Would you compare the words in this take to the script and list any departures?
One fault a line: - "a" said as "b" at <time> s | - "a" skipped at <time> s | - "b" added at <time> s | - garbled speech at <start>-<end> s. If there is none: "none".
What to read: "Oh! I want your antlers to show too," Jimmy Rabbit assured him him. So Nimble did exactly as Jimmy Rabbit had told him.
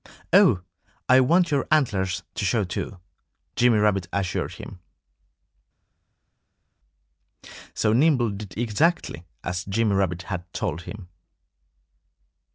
- "him" skipped at 4.8 s